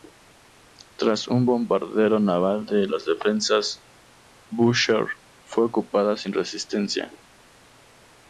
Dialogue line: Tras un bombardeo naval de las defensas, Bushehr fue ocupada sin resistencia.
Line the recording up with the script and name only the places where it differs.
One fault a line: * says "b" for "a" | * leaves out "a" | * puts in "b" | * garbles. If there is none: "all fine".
all fine